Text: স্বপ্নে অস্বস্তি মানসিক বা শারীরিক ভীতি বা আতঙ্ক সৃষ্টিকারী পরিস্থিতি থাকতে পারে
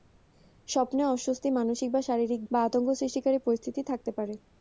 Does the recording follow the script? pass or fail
fail